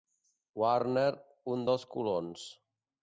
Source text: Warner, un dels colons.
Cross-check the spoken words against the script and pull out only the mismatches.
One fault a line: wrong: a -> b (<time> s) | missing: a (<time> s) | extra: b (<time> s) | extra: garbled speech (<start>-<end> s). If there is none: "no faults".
no faults